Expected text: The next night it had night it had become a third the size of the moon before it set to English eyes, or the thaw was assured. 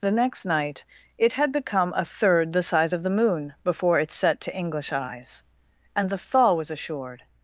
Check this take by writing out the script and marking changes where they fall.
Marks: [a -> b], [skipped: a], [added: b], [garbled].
The next night it had [skipped: night it had] become a third the size of the moon before it set to English eyes, [or -> and] the thaw was assured.